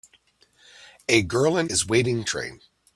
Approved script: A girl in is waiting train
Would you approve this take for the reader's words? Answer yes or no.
yes